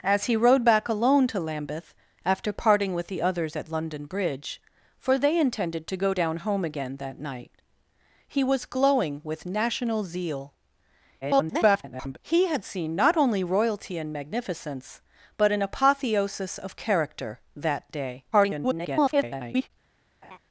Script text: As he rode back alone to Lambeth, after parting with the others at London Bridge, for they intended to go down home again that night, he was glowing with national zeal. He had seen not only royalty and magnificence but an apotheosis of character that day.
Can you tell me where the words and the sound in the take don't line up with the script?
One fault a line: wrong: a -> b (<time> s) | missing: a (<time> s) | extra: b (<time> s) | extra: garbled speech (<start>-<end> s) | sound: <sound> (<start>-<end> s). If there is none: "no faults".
extra: garbled speech (11.2-12.2 s)
extra: garbled speech (18.3-19.7 s)
sound: laugh (20.2-20.4 s)